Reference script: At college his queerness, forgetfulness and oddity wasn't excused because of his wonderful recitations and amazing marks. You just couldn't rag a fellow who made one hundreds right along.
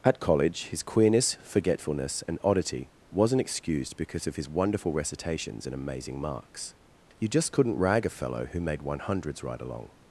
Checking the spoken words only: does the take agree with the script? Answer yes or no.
yes